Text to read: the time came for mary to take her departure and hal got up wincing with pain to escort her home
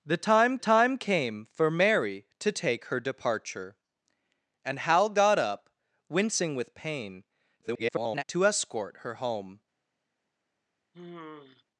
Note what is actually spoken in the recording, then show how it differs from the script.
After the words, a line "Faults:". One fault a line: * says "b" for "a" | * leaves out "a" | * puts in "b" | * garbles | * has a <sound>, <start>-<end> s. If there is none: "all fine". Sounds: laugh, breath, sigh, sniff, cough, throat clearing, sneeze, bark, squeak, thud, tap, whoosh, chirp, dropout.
the time time came for mary to take her departure and hal got up wincing with pain [garbled] to escort her home
Faults:
* puts in "time"
* garbles
* has a sigh, 10.9-11.6 s